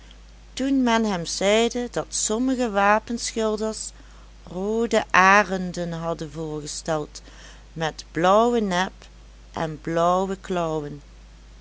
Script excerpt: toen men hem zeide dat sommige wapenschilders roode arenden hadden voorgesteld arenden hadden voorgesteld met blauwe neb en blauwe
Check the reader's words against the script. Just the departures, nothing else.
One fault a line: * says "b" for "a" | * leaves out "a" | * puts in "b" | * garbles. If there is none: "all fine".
* leaves out "arenden hadden voorgesteld"